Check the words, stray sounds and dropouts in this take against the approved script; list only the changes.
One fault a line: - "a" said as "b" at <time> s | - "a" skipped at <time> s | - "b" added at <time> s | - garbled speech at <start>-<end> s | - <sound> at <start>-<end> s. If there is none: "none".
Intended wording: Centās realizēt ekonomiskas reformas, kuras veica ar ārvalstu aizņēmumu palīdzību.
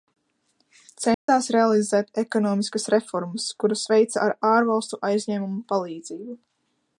- dropout at 1.1-1.3 s